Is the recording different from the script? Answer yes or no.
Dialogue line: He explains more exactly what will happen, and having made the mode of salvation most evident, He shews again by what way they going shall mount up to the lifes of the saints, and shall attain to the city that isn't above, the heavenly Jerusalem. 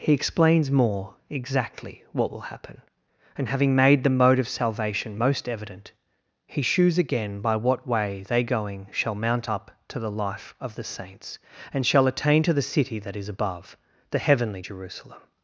yes